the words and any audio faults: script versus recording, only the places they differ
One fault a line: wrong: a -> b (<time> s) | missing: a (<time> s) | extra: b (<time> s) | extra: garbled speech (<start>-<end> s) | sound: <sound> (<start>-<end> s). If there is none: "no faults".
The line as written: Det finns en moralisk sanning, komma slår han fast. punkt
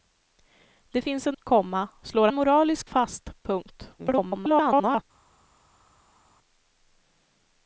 missing: moralisk sanning (1.4 s)
wrong: han -> moralisk (2.3 s)
extra: garbled speech (4.0-5.0 s)